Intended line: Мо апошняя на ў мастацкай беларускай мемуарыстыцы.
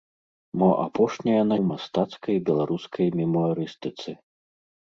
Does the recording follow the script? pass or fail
pass